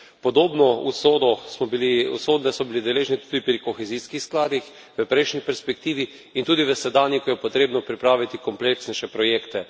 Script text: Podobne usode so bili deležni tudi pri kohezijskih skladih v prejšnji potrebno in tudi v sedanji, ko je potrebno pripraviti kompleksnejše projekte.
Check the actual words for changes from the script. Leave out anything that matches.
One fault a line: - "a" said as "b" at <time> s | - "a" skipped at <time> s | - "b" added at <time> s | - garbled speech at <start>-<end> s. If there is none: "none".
- "potrebno" said as "perspektivi" at 5.5 s